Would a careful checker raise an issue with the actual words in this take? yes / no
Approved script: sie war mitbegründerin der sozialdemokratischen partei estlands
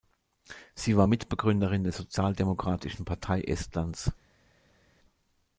no